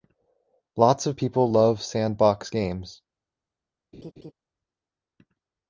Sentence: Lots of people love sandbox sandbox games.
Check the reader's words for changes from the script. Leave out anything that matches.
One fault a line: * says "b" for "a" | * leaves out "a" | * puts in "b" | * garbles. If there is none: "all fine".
* leaves out "sandbox"